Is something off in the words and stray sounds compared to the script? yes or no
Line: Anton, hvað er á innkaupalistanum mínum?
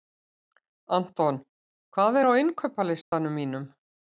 yes